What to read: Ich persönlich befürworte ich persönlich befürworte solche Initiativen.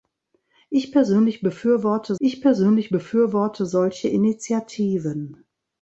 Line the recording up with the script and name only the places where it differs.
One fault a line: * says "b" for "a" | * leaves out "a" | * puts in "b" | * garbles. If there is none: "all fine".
all fine